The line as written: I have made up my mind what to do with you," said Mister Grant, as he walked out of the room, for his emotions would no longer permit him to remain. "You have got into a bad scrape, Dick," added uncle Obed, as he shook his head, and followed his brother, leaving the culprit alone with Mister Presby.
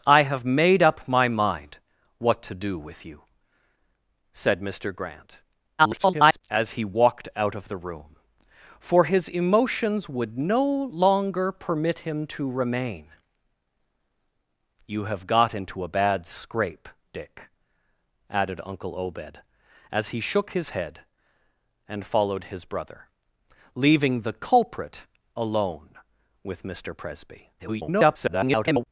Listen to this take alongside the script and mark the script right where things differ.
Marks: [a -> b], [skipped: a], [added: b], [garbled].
I have made up my mind what to do with you," said Mister Grant, [garbled] as he walked out of the room, for his emotions would no longer permit him to remain. "You have got into a bad scrape, Dick," added uncle Obed, as he shook his head, and followed his brother, leaving the culprit alone with Mister Presby. [garbled]